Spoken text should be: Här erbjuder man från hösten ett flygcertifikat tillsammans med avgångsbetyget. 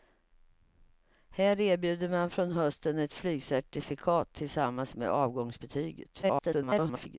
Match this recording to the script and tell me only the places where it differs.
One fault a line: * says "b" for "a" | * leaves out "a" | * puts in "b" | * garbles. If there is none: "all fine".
* garbles